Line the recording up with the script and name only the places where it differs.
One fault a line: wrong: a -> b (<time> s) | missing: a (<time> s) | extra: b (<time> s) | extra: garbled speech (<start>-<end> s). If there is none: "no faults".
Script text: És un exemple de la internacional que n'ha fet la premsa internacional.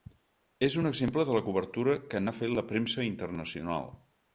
wrong: internacional -> cobertura (1.5 s)